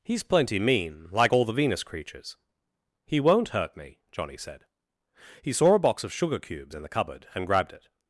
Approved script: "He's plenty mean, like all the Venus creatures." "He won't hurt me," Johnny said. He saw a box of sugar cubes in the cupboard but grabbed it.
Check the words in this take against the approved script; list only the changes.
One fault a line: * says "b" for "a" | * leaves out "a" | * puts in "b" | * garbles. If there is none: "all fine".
* says "and" for "but"